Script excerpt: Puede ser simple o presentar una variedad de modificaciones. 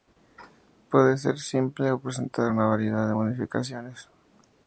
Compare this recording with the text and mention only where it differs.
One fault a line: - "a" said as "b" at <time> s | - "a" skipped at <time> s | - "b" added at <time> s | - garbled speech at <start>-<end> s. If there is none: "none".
none